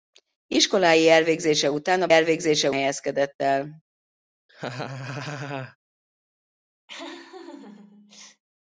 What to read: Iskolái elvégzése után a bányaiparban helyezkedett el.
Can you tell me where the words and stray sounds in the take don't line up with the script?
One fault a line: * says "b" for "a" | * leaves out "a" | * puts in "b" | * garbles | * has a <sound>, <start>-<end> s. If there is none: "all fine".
* says "elvégzése" for "bányaiparban"
* has a laugh, 4.5-5.8 s
* has a laugh, 6.9-8.4 s